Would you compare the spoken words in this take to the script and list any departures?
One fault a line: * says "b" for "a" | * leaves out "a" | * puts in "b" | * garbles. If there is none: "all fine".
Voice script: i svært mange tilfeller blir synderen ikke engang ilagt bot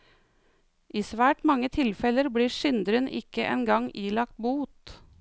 all fine